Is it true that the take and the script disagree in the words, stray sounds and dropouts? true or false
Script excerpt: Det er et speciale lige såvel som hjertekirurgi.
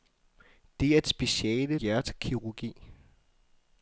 true